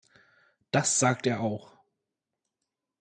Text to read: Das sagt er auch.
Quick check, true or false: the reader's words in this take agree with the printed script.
true